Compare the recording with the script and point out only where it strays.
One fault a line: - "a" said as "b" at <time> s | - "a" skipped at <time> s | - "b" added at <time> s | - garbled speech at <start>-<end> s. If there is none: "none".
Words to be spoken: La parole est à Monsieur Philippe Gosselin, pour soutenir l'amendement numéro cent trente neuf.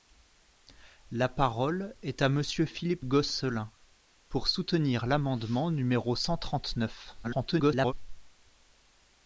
- garbled speech at 7.2-7.9 s